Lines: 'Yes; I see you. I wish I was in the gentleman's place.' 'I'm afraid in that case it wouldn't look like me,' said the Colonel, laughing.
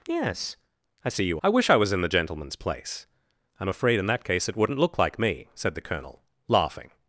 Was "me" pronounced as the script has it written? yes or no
yes